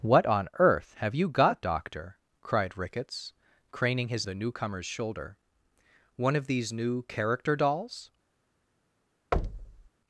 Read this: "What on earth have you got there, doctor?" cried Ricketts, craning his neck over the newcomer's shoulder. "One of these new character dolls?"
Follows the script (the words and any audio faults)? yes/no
no